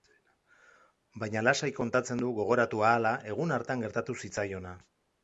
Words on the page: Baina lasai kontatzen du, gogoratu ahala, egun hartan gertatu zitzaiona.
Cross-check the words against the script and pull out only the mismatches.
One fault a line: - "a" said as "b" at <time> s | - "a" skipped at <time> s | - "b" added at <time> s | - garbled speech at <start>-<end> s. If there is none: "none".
none